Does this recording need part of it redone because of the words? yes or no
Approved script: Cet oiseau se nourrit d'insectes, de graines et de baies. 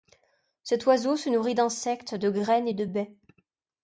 no